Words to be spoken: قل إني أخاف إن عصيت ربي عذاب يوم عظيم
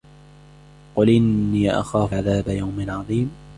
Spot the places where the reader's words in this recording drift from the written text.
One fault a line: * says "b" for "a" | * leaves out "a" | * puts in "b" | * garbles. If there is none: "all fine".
* leaves out "إن عصيت ربي"